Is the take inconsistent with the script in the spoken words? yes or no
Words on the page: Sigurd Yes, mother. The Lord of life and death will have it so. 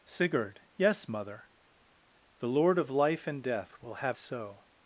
yes